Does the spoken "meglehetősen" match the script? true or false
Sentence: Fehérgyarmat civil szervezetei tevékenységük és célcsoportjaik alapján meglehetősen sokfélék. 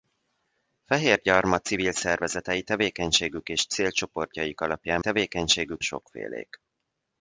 false